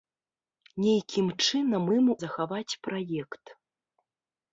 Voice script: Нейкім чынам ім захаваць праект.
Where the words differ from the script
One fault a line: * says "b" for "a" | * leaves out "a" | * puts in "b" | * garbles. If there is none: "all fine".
all fine